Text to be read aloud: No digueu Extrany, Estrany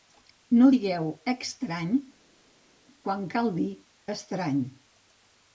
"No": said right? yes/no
yes